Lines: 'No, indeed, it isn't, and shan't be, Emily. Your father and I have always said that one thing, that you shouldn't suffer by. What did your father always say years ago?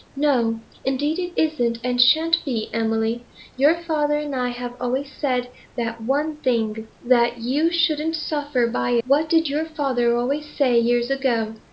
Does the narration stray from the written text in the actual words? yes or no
no